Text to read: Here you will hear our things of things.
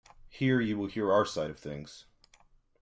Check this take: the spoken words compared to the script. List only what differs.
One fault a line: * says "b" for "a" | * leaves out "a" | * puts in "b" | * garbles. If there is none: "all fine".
* says "side" for "things"